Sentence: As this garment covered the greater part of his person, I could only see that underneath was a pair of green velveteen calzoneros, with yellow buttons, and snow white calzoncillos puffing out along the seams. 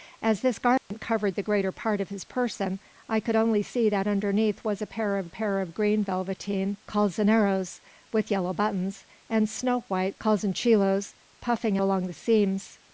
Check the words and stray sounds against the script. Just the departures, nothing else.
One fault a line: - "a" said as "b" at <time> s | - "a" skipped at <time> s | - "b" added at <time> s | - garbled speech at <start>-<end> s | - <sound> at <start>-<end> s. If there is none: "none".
- dropout at 0.8-0.9 s
- "pair of" added at 5.3 s
- "out" skipped at 11.8 s